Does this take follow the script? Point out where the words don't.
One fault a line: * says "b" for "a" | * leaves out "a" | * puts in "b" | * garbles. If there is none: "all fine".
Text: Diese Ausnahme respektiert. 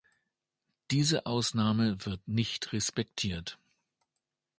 * puts in "wird nicht"